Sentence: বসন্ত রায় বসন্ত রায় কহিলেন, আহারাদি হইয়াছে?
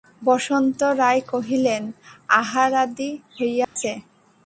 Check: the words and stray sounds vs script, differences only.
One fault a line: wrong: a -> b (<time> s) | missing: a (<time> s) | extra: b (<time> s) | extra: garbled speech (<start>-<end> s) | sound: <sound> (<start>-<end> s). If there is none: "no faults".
missing: বসন্ত রায় (1.2 s)
sound: dropout (3.6-3.8 s)